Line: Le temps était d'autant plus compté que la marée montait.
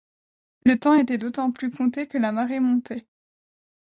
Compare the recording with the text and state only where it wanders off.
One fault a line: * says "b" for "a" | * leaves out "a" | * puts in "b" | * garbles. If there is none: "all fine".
all fine